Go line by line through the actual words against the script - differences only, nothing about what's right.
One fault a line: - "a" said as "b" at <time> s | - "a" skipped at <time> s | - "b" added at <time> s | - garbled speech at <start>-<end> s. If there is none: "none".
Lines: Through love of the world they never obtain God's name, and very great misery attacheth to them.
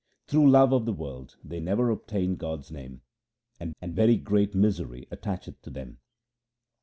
- "and" added at 3.8 s